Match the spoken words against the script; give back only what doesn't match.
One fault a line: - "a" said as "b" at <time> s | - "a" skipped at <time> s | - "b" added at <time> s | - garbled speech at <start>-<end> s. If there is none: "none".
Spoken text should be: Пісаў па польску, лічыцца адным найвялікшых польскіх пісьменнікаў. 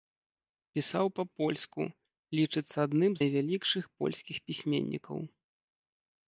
none